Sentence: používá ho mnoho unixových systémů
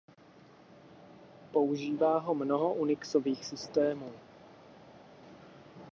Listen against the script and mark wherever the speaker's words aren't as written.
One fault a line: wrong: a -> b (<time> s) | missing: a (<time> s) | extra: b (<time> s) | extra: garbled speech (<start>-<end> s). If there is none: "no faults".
no faults